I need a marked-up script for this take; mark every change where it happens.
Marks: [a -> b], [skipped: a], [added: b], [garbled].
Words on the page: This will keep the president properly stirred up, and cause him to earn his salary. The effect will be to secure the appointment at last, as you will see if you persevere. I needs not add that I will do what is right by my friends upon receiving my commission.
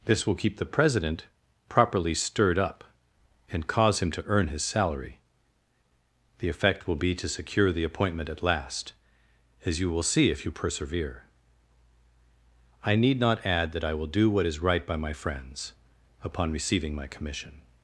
This will keep the president properly stirred up, and cause him to earn his salary. The effect will be to secure the appointment at last, as you will see if you persevere. I [needs -> need] not add that I will do what is right by my friends upon receiving my commission.